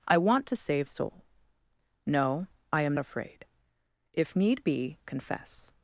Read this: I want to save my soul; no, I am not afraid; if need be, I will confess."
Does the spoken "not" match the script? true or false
false